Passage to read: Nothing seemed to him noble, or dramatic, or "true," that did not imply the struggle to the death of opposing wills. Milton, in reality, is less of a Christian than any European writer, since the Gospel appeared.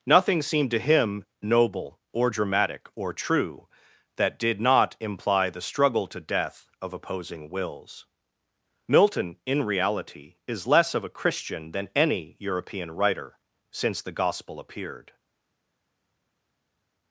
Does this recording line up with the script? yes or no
no